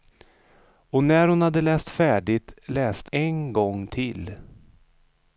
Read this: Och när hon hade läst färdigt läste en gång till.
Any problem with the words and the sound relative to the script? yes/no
no